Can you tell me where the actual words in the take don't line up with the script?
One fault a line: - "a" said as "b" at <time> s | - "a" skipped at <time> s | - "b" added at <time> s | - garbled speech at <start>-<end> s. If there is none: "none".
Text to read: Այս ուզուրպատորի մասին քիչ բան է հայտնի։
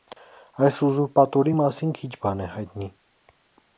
none